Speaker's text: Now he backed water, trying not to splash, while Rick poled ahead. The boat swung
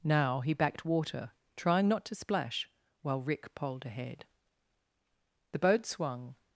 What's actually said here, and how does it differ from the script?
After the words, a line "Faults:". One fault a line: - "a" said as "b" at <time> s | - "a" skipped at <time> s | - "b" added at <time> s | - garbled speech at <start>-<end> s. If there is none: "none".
Now he backed water, trying not to splash, while Rick poled ahead. The boat swung
Faults:
none